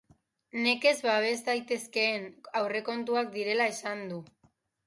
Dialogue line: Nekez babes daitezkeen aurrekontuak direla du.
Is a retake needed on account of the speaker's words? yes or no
yes